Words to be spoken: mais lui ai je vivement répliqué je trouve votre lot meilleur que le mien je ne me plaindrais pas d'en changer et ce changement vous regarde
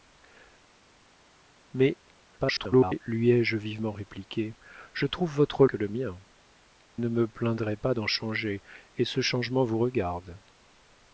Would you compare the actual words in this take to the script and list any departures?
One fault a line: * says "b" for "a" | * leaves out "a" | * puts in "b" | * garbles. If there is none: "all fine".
* garbles
* leaves out "lot meilleur"
* leaves out "je"